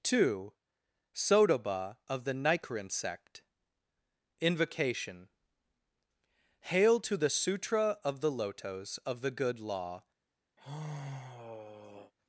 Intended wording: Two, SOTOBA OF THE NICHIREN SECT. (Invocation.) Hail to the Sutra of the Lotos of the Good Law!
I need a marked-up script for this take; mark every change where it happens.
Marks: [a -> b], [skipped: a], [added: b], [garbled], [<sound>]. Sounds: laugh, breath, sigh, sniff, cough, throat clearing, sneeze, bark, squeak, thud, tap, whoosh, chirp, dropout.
Two, SOTOBA OF THE NICHIREN SECT. (Invocation.) Hail to the Sutra of the Lotos of the Good Law! [sigh]